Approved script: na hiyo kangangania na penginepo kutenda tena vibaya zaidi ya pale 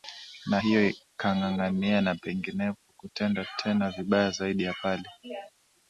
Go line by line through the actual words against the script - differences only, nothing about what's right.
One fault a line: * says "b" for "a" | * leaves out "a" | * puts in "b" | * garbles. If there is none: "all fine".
all fine